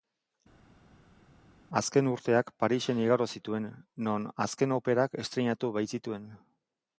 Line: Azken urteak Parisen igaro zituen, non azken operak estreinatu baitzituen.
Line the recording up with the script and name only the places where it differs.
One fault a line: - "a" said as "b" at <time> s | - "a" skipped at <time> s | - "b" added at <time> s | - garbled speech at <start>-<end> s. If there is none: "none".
none